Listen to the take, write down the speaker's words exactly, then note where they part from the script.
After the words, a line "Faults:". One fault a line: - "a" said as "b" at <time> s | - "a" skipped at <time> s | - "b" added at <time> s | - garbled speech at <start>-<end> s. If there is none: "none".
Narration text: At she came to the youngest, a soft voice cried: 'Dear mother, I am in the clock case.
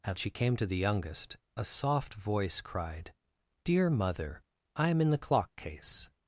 At she came to the youngest, a soft voice cried: 'Dear mother, I am in the clock case.
Faults:
none